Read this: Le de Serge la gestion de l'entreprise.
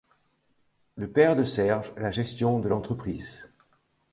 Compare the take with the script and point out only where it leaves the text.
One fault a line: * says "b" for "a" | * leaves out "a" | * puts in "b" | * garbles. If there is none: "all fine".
* puts in "père"